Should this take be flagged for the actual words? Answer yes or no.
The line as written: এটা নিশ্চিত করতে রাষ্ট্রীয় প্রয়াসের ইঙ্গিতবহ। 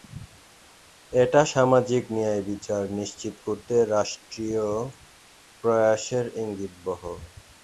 yes